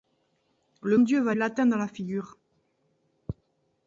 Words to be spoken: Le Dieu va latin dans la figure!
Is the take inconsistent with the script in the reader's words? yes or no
no